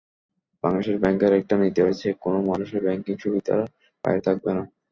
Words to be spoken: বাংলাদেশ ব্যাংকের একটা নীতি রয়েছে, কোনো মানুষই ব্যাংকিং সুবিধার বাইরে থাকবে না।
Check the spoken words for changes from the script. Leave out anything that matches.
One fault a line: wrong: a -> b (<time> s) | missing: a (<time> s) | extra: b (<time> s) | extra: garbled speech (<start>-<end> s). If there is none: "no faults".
no faults